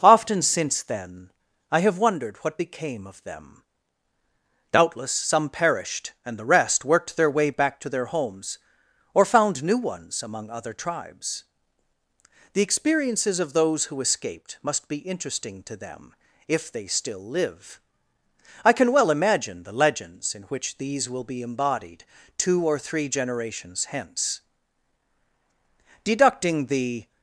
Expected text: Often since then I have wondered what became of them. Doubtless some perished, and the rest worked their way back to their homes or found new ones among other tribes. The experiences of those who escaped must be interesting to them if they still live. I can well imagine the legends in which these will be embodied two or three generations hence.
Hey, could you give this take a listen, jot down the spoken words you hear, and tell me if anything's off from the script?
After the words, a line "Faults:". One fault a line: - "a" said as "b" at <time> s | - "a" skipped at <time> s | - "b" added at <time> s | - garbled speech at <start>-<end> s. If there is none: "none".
Often since then I have wondered what became of them. Doubtless some perished, and the rest worked their way back to their homes or found new ones among other tribes. The experiences of those who escaped must be interesting to them if they still live. I can well imagine the legends in which these will be embodied two or three generations hence. Deducting the
Faults:
- "Deducting the" added at 26.0 s